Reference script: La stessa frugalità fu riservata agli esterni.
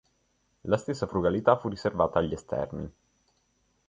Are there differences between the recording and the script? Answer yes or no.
no